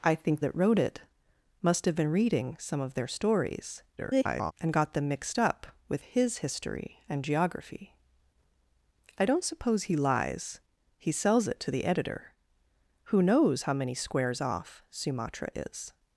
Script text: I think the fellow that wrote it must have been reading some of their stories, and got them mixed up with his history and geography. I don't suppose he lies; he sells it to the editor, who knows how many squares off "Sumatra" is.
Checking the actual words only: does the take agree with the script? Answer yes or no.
no